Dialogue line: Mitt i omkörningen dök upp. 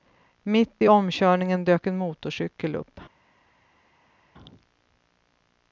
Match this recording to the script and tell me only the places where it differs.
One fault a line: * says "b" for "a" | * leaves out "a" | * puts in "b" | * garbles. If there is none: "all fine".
* puts in "en motorcykel"